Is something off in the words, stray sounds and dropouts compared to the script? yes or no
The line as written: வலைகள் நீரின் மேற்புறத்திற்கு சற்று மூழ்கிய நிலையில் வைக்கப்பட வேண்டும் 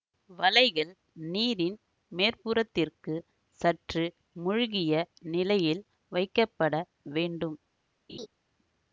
yes